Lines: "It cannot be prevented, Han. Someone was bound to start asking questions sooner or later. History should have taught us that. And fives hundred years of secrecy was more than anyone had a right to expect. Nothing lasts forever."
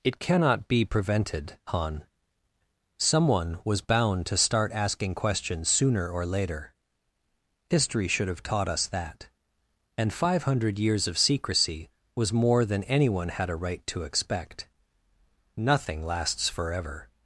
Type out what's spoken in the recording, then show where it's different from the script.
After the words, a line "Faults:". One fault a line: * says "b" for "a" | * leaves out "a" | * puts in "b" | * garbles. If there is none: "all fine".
"It cannot be prevented, Han. Someone was bound to start asking questions sooner or later. History should have taught us that. And five hundred years of secrecy was more than anyone had a right to expect. Nothing lasts forever."
Faults:
* says "five" for "fives"